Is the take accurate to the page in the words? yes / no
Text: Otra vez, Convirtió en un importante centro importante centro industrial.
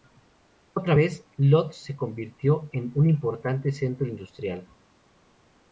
no